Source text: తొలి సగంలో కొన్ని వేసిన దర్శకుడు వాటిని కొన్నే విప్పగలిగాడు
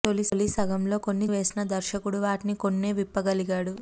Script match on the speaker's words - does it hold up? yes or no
yes